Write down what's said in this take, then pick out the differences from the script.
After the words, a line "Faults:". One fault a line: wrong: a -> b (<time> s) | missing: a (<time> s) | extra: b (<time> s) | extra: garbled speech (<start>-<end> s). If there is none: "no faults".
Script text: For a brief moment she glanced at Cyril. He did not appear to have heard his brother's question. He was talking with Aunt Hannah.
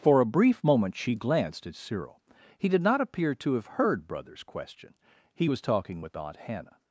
For a brief moment she glanced at Cyril. He did not appear to have heard brother's question. He was talking with Aunt Hannah.
Faults:
missing: his (4.1 s)